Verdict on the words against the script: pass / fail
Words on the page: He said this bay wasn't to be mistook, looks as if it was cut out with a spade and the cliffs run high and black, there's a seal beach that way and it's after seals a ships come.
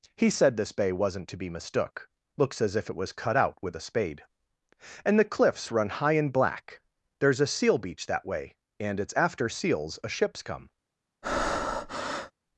pass